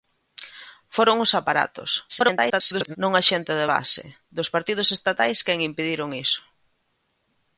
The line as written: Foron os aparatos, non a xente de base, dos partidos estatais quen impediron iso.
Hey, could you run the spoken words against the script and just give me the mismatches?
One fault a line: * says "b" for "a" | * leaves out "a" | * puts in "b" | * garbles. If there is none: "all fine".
* garbles